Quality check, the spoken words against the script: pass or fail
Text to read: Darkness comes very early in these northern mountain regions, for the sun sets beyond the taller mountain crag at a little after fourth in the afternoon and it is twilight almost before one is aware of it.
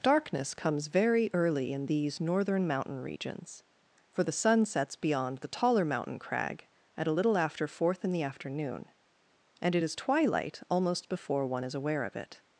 pass